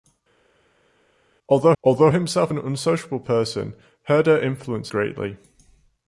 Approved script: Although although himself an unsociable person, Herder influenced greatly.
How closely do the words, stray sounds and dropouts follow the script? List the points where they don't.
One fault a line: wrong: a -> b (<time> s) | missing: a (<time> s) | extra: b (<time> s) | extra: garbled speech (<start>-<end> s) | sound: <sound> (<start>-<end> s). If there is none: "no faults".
no faults